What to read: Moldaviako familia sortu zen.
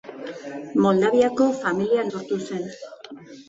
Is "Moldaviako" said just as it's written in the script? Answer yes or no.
yes